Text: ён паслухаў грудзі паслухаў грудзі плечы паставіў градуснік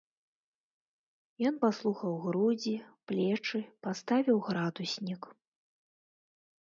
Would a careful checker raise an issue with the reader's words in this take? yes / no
yes